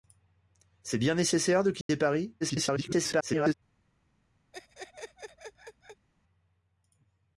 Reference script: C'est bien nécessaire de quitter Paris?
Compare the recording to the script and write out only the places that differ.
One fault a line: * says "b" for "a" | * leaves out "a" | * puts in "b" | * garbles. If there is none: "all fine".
* garbles